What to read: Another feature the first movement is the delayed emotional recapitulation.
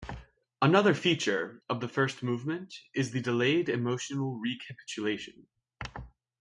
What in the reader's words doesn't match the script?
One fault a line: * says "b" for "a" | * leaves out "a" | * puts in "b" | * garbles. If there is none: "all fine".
* puts in "of"